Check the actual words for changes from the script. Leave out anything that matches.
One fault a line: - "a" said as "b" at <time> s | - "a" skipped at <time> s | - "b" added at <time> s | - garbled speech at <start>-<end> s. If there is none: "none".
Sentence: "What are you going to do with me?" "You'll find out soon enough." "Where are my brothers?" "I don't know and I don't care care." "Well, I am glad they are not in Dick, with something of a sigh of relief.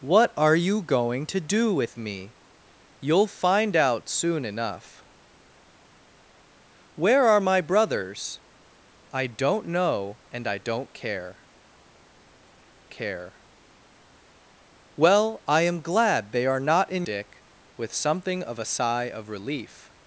none